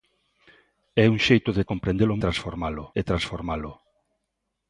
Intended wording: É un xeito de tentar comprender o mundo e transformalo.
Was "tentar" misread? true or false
true